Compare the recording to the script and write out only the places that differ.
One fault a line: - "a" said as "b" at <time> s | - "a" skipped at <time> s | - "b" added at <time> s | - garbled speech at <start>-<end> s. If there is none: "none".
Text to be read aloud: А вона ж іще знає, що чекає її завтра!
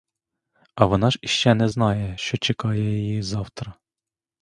- "не" added at 1.5 s